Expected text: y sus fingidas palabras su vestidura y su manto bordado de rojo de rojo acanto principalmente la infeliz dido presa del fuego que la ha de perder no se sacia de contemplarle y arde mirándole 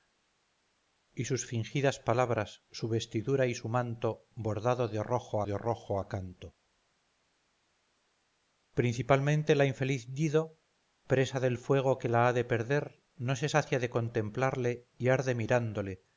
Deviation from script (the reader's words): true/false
false